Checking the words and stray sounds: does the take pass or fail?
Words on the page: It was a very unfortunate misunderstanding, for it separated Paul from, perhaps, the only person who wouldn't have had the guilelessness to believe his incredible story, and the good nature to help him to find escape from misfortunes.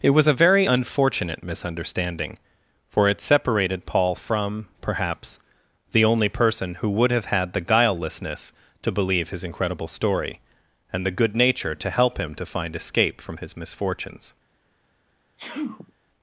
fail